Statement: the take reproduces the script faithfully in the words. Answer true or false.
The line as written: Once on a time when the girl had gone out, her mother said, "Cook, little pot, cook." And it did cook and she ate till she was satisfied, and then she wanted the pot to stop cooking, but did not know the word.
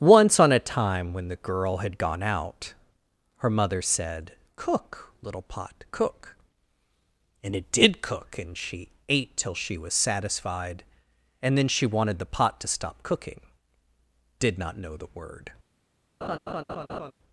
false